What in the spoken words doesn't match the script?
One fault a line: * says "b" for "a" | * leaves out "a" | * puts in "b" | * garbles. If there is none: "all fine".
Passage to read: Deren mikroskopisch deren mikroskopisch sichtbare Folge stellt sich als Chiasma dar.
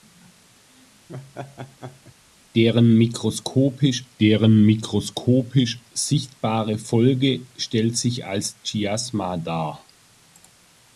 all fine